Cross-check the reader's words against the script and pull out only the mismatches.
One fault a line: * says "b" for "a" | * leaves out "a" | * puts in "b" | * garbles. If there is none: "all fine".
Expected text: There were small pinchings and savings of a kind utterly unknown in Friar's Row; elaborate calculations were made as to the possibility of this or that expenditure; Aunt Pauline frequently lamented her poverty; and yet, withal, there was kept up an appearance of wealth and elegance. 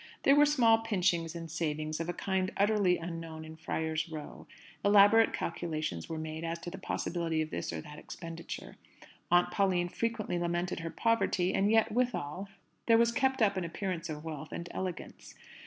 all fine